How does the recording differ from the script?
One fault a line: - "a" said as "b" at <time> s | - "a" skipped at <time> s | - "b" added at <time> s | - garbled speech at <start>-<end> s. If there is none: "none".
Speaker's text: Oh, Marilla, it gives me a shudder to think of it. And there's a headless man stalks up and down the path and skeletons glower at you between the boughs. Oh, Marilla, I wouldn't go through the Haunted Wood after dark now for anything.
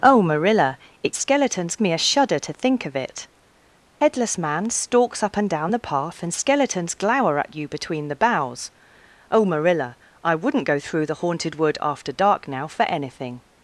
- "gives" said as "skeletons" at 1.1 s
- "And there's a" skipped at 3.3 s